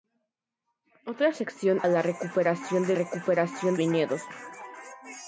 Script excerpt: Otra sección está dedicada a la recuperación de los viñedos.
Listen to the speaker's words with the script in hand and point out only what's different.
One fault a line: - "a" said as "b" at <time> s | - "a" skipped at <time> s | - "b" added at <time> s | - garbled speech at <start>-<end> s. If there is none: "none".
- "está dedicada" skipped at 1.8 s
- "los" said as "recuperación" at 2.9 s